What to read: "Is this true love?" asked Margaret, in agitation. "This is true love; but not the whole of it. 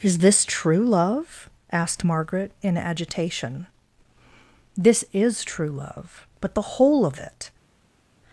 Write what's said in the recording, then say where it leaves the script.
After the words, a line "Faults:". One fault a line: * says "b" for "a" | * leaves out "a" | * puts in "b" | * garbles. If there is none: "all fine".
"Is this true love?" asked Margaret, in agitation. "This is true love; but the whole of it.
Faults:
* leaves out "not"